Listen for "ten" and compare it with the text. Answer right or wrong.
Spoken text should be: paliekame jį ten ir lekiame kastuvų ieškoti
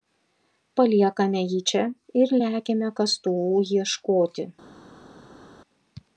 wrong